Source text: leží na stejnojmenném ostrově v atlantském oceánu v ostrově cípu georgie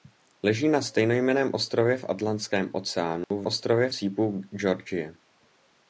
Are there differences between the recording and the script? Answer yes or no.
no